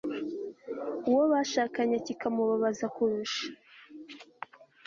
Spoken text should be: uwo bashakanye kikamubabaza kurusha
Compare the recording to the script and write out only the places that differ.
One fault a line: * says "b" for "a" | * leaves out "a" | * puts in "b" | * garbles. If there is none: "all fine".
all fine